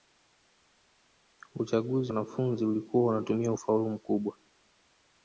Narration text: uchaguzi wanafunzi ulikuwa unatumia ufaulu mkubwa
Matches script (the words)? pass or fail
pass